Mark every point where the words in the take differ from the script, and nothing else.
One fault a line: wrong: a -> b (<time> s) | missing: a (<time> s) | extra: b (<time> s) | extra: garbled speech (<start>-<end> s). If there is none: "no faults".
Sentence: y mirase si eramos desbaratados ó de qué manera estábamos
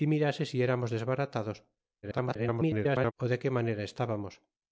extra: garbled speech (2.0-3.1 s)